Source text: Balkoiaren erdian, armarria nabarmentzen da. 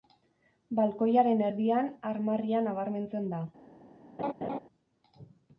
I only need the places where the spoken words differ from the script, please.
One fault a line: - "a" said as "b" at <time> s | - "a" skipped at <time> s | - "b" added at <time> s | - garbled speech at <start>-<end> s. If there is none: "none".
none